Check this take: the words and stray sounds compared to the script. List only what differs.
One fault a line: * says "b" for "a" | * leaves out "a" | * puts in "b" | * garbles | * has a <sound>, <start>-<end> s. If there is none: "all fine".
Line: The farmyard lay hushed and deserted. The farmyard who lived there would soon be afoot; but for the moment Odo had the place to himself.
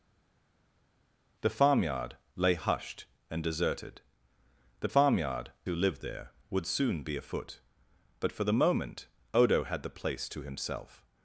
all fine